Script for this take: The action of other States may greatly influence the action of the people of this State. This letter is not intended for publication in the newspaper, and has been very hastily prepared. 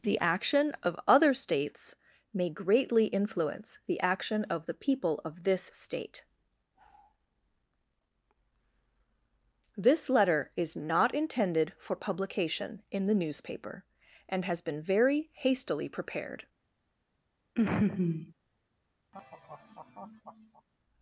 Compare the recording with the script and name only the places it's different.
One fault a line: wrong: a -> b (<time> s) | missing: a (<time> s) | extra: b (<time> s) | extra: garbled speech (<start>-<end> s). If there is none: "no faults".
no faults